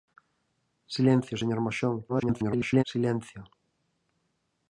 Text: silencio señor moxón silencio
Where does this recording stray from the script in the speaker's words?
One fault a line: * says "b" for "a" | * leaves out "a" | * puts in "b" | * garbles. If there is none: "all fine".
* garbles